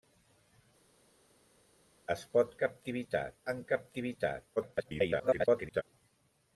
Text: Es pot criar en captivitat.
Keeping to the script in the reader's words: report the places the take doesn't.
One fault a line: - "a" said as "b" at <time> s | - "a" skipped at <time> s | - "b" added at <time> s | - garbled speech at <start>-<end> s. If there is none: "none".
- "criar" said as "captivitat" at 2.6 s
- garbled speech at 4.6-5.8 s